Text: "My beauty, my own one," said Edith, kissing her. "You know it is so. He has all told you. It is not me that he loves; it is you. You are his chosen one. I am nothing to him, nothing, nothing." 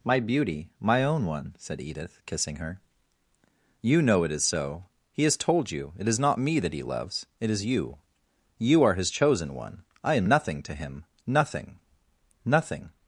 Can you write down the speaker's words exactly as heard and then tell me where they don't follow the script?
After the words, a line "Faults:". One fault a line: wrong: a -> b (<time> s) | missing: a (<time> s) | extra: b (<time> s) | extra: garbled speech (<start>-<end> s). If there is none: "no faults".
"My beauty, my own one," said Edith, kissing her. "You know it is so. He has told you. It is not me that he loves; it is you. You are his chosen one. I am nothing to him, nothing, nothing."
Faults:
missing: all (5.4 s)